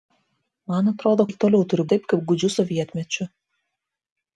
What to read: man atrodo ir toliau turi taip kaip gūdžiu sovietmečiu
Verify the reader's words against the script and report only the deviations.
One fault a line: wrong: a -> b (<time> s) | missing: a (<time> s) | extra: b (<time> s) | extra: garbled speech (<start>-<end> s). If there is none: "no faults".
no faults